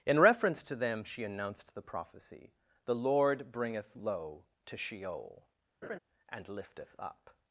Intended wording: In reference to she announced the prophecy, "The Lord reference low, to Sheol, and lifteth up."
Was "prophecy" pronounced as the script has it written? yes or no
yes